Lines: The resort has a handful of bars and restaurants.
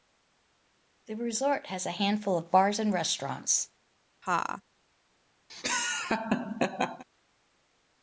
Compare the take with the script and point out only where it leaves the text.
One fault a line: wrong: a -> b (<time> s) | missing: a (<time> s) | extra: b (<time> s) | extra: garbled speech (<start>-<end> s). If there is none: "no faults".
no faults